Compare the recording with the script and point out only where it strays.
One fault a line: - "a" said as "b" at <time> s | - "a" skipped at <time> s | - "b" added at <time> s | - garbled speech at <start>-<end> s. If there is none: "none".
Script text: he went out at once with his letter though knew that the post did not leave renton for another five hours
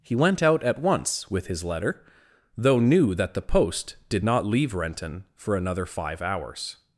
none